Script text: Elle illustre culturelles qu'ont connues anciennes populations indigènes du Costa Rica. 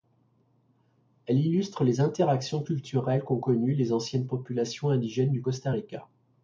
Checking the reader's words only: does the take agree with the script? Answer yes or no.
no